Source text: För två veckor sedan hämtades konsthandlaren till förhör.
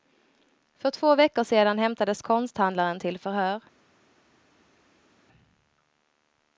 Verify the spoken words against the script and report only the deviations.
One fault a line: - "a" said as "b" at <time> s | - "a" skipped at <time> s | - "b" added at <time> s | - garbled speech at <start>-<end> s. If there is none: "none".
none